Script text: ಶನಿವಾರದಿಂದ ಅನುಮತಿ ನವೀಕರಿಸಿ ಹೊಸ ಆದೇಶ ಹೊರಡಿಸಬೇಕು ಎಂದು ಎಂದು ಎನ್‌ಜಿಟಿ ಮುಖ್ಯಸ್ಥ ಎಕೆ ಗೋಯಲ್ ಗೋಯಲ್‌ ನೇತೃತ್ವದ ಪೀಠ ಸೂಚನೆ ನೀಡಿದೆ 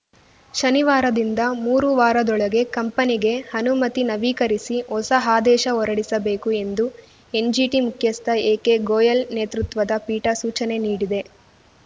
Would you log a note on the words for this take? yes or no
yes